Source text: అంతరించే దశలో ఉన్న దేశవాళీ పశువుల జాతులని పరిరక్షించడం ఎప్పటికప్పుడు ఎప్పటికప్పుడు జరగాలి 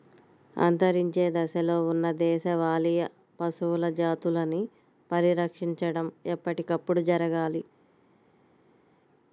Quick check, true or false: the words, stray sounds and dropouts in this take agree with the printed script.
false